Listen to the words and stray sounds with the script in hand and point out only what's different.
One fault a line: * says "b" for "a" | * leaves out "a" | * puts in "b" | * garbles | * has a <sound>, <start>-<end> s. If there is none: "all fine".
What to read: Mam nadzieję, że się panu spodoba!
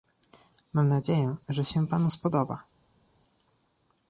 all fine